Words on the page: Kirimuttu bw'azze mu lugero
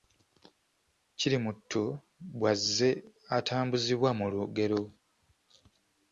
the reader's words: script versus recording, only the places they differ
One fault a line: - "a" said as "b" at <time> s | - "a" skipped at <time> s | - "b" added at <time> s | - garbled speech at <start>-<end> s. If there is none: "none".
- "atambuzibwa" added at 3.4 s